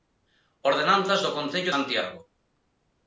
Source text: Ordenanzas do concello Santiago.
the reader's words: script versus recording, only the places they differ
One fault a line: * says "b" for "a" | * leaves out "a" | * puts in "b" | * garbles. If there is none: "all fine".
all fine